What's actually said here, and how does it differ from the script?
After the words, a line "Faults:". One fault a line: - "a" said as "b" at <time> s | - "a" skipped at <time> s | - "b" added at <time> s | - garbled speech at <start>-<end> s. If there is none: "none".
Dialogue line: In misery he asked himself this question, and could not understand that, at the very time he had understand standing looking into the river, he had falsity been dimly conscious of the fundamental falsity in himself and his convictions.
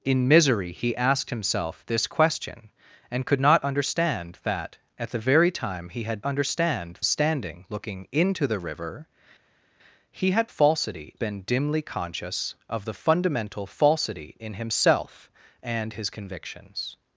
In misery he asked himself this question, and could not understand that, at the very time he had understand standing looking into the river, he had falsity been dimly conscious of the fundamental falsity in himself and his convictions.
Faults:
none